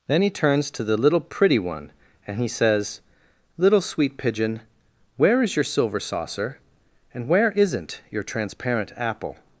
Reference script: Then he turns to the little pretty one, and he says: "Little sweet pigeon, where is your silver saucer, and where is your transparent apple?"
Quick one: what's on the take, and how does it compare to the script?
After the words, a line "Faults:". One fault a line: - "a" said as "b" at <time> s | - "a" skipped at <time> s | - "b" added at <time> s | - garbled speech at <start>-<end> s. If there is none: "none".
Then he turns to the little pretty one, and he says: "Little sweet pigeon, where is your silver saucer, and where isn't your transparent apple?"
Faults:
- "is" said as "isn't" at 7.5 s